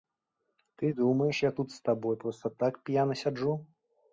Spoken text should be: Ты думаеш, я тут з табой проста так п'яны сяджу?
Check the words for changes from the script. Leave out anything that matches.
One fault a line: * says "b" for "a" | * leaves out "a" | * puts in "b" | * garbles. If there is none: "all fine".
all fine